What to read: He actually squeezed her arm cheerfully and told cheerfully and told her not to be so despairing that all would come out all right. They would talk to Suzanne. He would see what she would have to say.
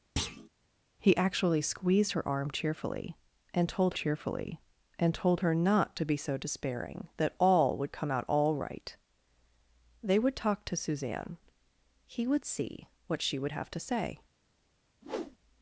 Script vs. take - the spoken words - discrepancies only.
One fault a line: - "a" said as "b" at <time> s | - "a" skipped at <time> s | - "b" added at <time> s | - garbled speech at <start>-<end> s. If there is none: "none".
none